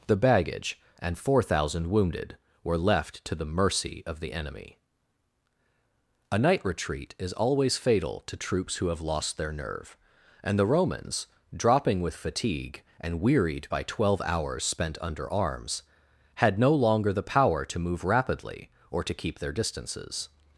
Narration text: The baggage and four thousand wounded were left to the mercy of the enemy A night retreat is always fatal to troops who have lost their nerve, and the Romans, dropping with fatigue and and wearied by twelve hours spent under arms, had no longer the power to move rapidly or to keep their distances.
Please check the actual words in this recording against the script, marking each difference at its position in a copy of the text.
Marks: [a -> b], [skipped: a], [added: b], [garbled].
The baggage and four thousand wounded were left to the mercy of the enemy A night retreat is always fatal to troops who have lost their nerve, and the Romans, dropping with fatigue and [skipped: and] wearied by twelve hours spent under arms, had no longer the power to move rapidly or to keep their distances.